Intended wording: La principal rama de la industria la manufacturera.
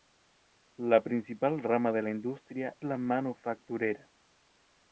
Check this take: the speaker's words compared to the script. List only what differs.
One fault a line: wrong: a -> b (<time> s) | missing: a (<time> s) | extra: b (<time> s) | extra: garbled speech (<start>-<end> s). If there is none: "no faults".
no faults